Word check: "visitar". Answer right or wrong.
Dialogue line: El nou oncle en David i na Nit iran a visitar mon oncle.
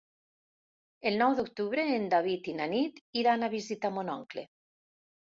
right